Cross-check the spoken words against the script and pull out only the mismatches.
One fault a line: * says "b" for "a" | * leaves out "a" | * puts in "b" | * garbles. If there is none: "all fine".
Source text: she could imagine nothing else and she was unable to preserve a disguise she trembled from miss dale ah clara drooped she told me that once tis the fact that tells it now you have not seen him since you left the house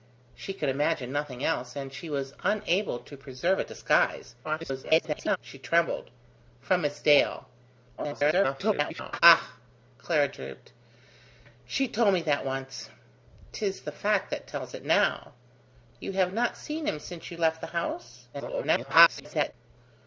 * garbles
* garbles
* garbles